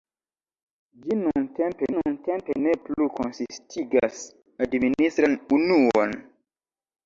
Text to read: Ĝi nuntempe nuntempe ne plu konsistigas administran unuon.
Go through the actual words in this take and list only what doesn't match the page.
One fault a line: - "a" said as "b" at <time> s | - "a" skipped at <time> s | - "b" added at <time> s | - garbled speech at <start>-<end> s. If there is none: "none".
none